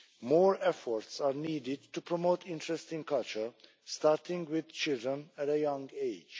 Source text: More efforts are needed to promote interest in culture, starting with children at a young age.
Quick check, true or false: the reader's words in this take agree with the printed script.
true